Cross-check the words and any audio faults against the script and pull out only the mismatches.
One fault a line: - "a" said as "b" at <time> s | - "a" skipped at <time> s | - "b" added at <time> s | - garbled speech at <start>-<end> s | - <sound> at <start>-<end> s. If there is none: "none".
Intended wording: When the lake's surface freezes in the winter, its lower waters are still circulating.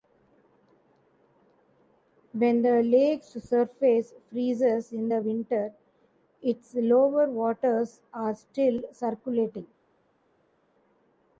none